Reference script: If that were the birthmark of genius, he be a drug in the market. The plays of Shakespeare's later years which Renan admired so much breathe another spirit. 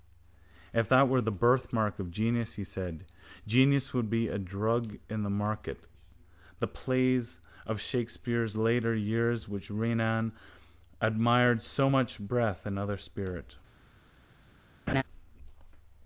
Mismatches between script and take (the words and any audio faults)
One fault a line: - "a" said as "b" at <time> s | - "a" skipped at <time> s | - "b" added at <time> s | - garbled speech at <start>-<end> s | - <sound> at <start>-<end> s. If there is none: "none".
- "said genius would" added at 2.6 s
- laugh at 14.9-15.0 s